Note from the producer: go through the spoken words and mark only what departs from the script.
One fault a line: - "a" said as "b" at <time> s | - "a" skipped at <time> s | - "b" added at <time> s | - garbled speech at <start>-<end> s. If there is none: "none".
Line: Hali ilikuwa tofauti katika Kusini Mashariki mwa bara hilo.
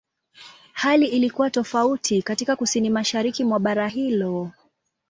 none